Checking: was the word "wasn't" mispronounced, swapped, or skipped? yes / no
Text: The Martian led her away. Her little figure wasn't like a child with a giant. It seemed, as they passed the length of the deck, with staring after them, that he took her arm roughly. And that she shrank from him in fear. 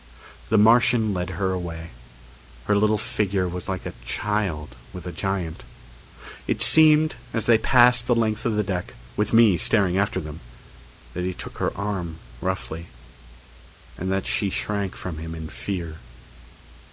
yes